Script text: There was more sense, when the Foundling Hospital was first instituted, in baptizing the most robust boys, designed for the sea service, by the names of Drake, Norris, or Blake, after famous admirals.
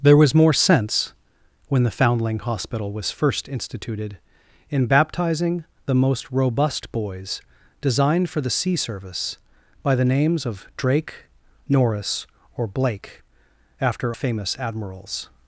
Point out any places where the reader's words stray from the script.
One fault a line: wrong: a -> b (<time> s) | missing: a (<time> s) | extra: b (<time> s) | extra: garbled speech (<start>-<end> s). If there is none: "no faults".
no faults